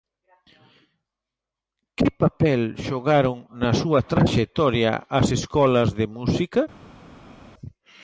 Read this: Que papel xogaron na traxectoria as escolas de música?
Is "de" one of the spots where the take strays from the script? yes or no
no